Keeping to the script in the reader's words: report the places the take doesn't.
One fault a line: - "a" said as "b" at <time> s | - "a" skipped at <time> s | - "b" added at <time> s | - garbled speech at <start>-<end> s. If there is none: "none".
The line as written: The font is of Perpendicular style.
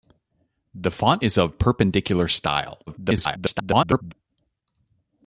- garbled speech at 2.9-4.1 s